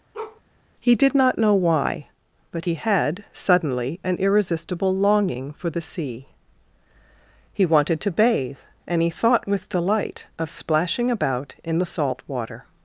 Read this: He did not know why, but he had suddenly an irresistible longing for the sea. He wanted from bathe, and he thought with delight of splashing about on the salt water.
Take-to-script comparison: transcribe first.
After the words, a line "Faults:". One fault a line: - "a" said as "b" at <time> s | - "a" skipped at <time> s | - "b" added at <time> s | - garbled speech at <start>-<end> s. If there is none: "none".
He did not know why, but he had suddenly an irresistible longing for the sea. He wanted to bathe, and he thought with delight of splashing about in the salt water.
Faults:
- "from" said as "to" at 8.0 s
- "on" said as "in" at 11.6 s